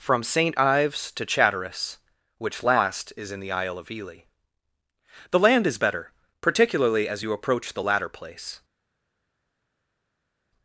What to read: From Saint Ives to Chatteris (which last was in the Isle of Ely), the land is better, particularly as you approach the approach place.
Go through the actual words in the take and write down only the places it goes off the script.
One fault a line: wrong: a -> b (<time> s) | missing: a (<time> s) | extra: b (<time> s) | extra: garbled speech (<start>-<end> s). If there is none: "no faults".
wrong: was -> is (3.1 s)
wrong: approach -> latter (7.8 s)